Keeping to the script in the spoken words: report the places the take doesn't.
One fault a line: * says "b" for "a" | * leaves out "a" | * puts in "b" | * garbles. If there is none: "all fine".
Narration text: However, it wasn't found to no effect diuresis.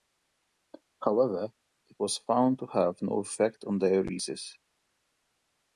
* says "was" for "wasn't"
* puts in "have"
* puts in "on"